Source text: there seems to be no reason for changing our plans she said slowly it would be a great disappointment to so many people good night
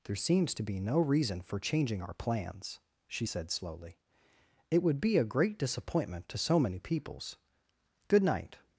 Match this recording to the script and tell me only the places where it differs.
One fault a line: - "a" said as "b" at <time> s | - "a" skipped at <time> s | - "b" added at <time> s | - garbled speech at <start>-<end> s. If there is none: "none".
- "people" said as "peoples" at 6.8 s